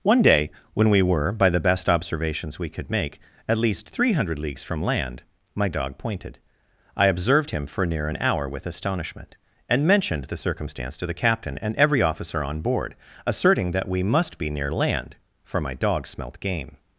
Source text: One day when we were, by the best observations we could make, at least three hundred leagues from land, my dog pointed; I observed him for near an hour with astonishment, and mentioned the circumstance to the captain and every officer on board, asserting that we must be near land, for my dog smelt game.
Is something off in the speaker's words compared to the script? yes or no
no